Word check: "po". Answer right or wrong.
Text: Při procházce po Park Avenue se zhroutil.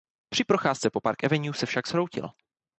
right